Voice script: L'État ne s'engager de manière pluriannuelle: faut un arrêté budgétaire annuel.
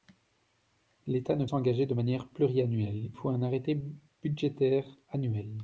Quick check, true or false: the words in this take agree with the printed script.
true